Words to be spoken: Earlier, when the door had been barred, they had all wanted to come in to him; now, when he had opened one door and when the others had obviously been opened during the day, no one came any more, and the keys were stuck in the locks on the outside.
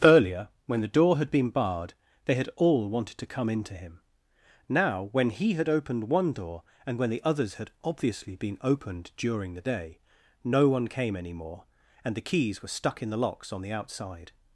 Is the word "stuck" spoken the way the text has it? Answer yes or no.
yes